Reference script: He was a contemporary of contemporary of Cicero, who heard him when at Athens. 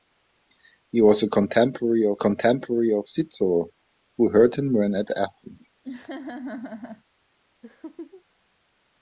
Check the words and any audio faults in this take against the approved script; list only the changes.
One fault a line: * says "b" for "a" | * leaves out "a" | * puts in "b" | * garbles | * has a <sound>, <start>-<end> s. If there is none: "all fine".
* has a laugh, 5.8-7.0 s
* has a laugh, 7.6-8.2 s